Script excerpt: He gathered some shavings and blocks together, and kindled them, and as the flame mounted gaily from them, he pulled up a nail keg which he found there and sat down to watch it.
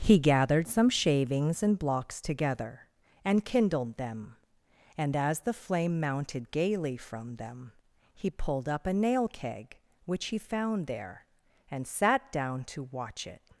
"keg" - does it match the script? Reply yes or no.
yes